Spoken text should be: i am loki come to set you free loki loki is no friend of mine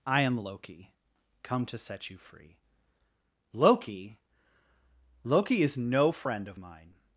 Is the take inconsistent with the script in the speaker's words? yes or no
no